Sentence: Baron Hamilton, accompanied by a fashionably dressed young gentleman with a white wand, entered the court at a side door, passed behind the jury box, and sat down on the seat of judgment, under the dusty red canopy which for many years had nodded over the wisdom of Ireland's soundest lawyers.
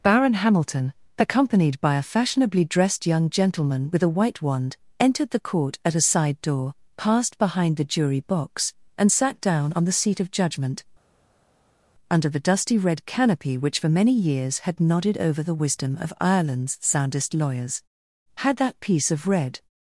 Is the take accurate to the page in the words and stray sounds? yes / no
no